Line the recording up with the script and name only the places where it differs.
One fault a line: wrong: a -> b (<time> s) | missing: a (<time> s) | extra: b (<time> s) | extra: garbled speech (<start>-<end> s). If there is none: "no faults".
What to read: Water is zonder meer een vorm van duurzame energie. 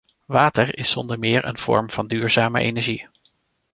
no faults